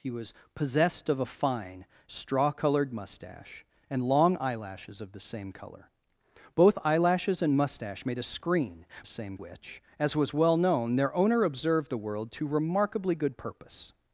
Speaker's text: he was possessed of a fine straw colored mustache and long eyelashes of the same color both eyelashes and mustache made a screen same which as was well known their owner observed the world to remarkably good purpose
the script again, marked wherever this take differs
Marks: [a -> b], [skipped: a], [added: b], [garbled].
he was possessed of a fine straw colored mustache and long eyelashes of the same color both eyelashes and mustache made a screen same which as was well known their owner observed the world to remarkably good purpose